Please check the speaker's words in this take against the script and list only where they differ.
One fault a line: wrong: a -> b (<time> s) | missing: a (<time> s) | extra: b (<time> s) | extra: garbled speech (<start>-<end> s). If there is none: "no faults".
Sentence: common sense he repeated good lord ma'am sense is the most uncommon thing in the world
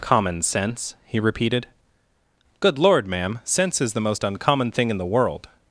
no faults